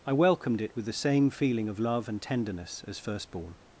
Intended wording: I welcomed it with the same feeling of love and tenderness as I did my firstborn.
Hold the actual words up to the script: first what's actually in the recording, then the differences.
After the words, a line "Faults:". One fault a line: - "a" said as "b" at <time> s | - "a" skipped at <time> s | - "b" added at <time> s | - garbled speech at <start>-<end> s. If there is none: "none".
I welcomed it with the same feeling of love and tenderness as firstborn.
Faults:
- "I did my" skipped at 3.0 s